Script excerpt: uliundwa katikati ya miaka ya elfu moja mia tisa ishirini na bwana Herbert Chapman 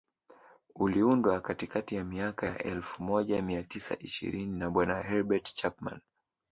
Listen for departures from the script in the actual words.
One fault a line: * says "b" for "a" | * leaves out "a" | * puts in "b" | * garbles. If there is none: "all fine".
all fine